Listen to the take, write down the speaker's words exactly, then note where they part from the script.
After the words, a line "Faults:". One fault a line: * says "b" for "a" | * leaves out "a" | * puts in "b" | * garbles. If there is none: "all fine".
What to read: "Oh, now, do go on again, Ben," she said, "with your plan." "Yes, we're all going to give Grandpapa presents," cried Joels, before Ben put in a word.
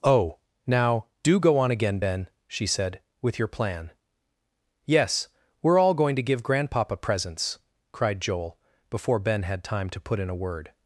"Oh, now, do go on again, Ben," she said, "with your plan." "Yes, we're all going to give Grandpapa presents," cried Joel, before Ben had time to put in a word.
Faults:
* says "Joel" for "Joels"
* puts in "had time to"